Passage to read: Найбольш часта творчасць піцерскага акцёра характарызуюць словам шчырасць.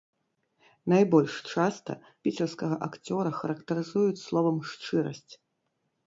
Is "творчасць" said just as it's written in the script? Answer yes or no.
no